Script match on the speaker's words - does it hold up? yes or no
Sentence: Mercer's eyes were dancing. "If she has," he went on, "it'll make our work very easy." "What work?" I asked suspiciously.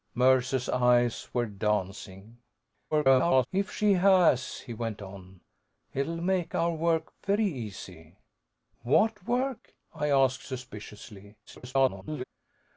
no